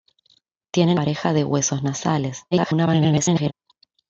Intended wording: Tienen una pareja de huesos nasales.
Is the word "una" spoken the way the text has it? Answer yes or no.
no